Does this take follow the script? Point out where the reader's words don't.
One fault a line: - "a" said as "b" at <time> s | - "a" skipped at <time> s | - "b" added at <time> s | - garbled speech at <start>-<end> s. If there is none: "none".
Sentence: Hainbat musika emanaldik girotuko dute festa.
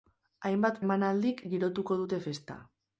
- "musika" skipped at 0.8 s